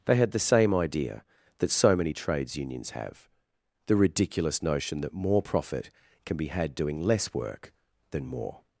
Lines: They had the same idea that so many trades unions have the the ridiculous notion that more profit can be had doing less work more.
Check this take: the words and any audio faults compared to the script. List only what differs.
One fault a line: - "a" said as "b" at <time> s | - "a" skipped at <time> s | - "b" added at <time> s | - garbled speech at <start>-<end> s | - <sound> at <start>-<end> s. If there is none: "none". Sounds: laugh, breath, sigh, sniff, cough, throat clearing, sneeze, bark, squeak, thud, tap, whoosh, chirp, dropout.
- "the" skipped at 4.0 s
- "than" added at 8.1 s